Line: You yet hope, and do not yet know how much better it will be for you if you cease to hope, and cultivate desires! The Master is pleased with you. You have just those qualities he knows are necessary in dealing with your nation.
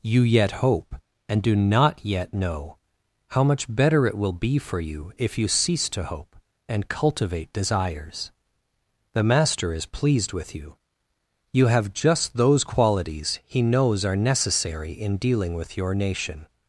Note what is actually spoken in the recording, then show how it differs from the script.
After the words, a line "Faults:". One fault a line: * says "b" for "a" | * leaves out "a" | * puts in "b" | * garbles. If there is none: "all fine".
You yet hope, and do not yet know how much better it will be for you if you cease to hope, and cultivate desires! The Master is pleased with you. You have just those qualities he knows are necessary in dealing with your nation.
Faults:
all fine